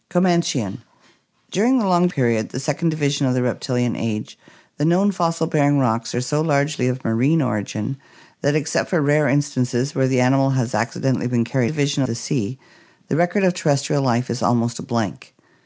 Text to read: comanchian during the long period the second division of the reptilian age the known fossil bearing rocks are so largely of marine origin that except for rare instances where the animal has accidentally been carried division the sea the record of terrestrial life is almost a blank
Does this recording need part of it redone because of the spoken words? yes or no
no